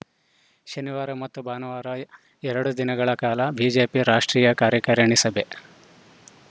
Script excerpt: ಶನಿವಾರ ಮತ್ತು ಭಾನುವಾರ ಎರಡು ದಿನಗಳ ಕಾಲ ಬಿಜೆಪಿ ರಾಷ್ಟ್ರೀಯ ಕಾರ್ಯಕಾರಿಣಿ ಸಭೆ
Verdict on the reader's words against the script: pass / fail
pass